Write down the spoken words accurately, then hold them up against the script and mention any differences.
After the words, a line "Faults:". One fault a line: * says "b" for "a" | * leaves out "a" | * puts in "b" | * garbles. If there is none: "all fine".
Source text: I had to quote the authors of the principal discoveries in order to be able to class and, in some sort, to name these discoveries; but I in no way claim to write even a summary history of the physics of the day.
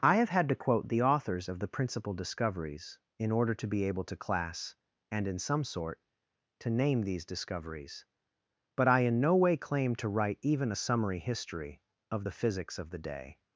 I have had to quote the authors of the principal discoveries in order to be able to class and, in some sort, to name these discoveries; but I in no way claim to write even a summary history of the physics of the day.
Faults:
* puts in "have"